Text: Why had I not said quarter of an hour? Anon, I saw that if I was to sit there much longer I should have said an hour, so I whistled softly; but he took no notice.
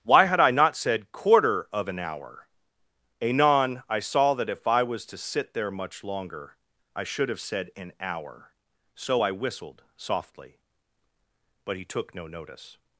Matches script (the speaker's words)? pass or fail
pass